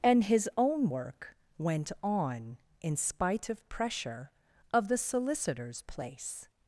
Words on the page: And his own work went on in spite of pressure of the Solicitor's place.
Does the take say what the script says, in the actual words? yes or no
yes